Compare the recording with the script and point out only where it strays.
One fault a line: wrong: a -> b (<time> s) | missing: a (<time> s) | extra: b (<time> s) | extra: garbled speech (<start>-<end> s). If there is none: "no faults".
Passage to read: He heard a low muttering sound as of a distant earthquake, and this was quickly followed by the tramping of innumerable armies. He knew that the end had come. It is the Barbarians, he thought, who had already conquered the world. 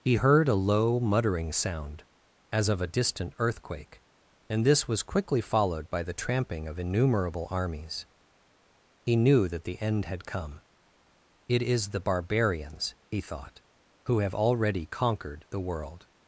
wrong: had -> have (14.2 s)